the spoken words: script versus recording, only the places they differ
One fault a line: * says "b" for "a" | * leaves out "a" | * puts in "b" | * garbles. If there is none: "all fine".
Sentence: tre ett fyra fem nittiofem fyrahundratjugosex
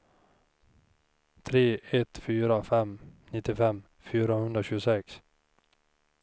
all fine